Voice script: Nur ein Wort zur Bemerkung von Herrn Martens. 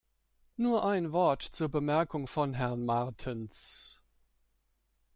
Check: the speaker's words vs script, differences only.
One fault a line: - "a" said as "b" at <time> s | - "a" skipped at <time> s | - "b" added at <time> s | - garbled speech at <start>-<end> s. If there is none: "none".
none